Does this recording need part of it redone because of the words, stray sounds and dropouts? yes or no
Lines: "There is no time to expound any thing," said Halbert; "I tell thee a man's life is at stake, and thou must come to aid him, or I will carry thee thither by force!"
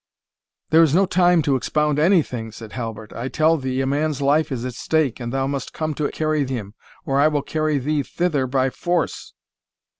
yes